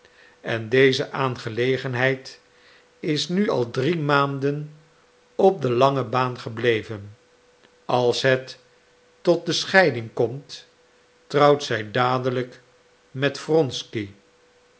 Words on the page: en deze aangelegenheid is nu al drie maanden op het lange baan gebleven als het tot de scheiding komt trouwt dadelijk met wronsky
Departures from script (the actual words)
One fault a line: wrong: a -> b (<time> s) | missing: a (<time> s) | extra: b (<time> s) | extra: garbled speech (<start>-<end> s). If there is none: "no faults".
wrong: het -> de (5.6 s)
extra: zij (11.6 s)